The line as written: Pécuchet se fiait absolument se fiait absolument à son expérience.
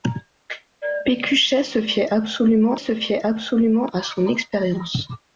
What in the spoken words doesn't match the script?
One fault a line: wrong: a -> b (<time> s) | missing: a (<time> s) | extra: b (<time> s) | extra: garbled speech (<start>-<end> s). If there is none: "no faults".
no faults